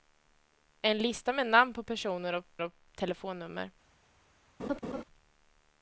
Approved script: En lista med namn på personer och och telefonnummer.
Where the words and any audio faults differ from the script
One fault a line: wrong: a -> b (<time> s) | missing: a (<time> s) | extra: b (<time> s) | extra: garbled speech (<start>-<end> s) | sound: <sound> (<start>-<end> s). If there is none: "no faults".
sound: laugh (4.6-5.0 s)